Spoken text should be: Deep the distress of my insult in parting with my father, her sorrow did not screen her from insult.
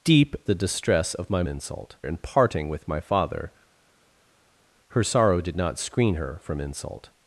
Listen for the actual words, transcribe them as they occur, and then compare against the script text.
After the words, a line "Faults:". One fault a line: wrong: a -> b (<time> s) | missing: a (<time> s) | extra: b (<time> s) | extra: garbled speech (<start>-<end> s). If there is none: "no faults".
Deep the distress of my insult in parting with my father, her sorrow did not screen her from insult.
Faults:
no faults